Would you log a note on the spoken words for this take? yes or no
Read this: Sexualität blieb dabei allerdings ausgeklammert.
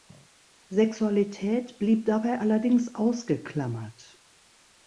no